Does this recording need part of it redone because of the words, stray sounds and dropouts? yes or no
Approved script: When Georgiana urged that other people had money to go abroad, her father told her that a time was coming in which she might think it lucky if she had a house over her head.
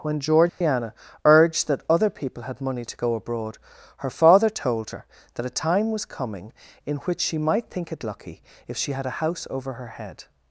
yes